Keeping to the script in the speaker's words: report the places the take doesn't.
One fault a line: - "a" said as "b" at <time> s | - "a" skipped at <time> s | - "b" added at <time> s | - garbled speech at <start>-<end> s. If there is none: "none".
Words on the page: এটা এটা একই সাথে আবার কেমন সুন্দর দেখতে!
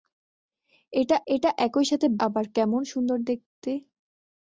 none